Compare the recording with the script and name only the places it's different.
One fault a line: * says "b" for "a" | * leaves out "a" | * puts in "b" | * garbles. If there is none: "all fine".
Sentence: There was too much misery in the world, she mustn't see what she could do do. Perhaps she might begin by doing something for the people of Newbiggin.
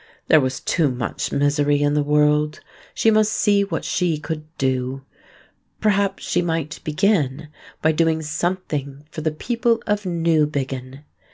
* says "must" for "mustn't"
* leaves out "do"